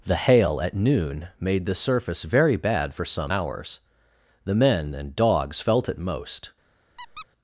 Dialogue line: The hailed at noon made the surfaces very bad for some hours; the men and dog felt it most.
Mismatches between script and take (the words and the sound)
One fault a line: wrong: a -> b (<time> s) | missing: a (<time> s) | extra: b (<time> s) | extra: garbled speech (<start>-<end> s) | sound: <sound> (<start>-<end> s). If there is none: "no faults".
wrong: hailed -> hail (0.1 s)
wrong: surfaces -> surface (1.8 s)
wrong: dog -> dogs (5.2 s)
sound: squeak (7.0-7.3 s)